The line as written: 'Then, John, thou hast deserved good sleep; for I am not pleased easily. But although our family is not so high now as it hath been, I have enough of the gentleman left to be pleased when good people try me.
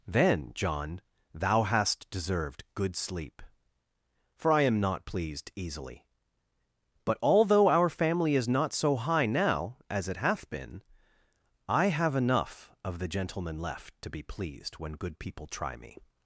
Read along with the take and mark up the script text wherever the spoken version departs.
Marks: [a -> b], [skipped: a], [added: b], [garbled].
'Then, John, thou hast deserved good sleep; for I am not pleased easily. But although our family is not so high now as it hath been, I have enough of the gentleman left to be pleased when good people try me.